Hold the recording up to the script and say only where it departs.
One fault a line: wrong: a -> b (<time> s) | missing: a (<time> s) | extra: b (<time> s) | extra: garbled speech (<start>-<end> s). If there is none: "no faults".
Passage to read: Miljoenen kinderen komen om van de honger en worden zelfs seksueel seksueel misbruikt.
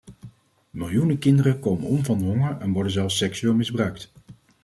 missing: seksueel (3.5 s)